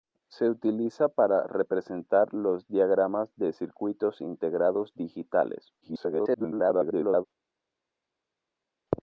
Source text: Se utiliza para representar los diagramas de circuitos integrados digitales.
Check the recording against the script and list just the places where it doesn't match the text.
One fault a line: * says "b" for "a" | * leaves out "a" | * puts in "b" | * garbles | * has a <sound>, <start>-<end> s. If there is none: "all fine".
* garbles